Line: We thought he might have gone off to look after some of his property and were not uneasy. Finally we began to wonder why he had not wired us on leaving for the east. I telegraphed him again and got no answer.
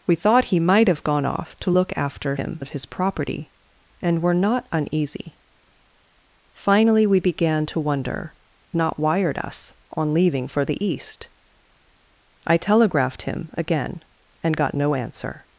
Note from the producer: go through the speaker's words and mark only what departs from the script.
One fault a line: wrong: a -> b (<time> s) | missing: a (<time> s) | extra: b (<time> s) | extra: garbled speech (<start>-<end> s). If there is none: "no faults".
wrong: some -> him (2.3 s)
missing: why he had (8.3 s)